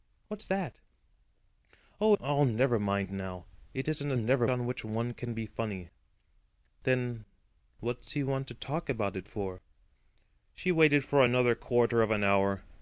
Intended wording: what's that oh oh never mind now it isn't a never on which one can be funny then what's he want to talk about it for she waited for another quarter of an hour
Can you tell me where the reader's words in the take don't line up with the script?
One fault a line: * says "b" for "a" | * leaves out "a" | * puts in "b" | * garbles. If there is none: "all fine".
all fine